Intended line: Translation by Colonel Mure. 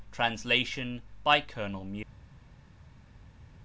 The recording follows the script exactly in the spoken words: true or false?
true